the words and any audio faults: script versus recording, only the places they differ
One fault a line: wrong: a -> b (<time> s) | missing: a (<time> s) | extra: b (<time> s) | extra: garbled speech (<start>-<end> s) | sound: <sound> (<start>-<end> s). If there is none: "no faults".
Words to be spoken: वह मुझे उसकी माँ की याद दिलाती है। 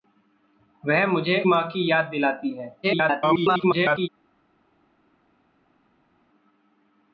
missing: उसकी (1.4 s)
extra: garbled speech (2.8-4.1 s)